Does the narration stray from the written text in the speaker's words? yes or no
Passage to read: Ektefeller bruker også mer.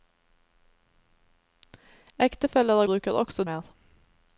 no